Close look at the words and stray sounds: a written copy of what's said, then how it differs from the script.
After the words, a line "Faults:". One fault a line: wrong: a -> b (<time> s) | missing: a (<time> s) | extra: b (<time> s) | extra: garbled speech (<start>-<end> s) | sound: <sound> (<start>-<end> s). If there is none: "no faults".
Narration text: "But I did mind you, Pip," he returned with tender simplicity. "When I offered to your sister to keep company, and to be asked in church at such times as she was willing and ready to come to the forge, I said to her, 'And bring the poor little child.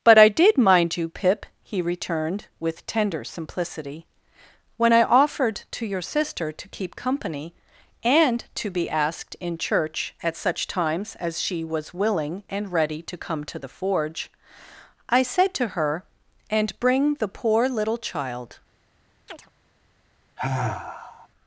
"But I did mind you, Pip," he returned with tender simplicity. "When I offered to your sister to keep company, and to be asked in church at such times as she was willing and ready to come to the forge, I said to her, 'And bring the poor little child.
Faults:
sound: chirp (19.3-19.5 s)
sound: sigh (20.4-21.3 s)